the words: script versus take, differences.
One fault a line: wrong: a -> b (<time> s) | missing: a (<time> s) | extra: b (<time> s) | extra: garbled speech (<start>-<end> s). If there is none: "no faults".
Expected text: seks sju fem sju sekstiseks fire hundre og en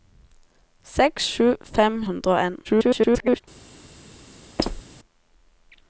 missing: sju sekstiseks fire (2.0 s)
extra: garbled speech (2.6-3.4 s)